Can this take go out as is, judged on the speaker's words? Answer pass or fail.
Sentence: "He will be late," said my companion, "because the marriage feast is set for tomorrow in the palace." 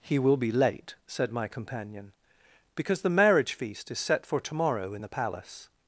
pass